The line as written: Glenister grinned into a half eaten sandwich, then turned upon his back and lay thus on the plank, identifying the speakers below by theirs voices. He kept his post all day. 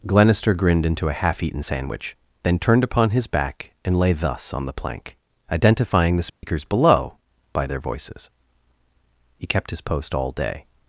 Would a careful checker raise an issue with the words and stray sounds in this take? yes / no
yes